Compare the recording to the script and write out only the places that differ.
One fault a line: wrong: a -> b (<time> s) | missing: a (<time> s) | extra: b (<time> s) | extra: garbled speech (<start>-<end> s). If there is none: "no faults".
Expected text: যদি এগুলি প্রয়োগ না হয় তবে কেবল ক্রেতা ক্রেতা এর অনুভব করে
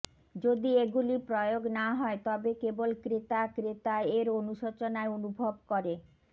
extra: অনুশোচনায় (4.4 s)